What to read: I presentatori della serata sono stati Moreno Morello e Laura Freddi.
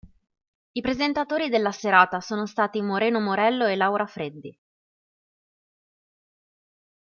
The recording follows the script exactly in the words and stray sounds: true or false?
true